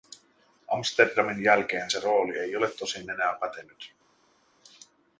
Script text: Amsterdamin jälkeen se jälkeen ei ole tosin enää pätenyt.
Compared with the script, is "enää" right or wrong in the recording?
right